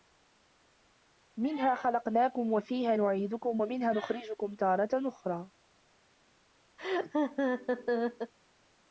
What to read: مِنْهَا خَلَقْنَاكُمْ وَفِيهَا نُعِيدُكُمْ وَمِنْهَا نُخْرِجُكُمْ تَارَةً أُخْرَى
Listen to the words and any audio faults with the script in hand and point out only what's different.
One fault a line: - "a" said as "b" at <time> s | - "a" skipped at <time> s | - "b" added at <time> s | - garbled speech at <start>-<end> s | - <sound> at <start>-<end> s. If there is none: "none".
- laugh at 6.8-8.3 s